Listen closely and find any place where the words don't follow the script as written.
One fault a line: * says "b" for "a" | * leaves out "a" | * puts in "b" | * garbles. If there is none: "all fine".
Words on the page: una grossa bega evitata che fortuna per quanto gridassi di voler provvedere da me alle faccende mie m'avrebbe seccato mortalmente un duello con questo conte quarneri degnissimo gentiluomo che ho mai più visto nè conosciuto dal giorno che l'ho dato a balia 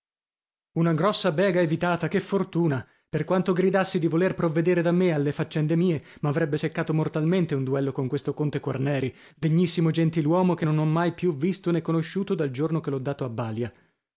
* puts in "non"